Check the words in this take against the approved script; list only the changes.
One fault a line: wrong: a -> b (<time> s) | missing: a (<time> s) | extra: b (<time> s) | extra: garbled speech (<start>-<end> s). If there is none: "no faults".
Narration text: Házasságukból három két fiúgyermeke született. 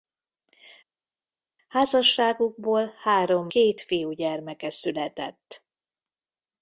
no faults